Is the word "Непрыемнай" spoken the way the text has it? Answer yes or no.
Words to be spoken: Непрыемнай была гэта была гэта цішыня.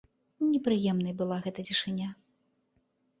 yes